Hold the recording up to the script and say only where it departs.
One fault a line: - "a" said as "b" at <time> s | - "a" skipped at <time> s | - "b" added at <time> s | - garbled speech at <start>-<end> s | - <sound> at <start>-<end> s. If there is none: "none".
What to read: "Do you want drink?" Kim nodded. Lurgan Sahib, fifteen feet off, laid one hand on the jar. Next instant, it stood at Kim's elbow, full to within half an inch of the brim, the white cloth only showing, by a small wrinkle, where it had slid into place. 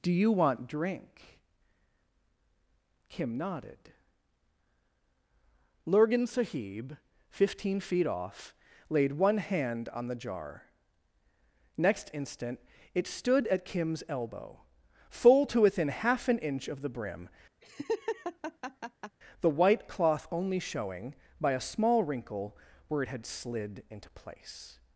- laugh at 17.6-19.2 s